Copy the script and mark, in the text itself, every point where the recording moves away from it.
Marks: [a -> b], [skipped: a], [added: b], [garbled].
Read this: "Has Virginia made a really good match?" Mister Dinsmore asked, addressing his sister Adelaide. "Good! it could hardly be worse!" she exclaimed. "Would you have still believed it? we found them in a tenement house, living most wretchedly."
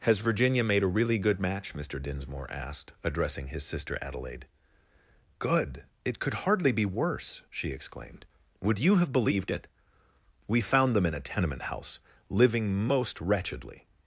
"Has Virginia made a really good match?" Mister Dinsmore asked, addressing his sister Adelaide. "Good! it could hardly be worse!" she exclaimed. "Would you have [skipped: still] believed it? we found them in a tenement house, living most wretchedly."